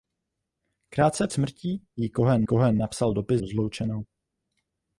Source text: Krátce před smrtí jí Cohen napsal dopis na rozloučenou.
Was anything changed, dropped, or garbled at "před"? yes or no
yes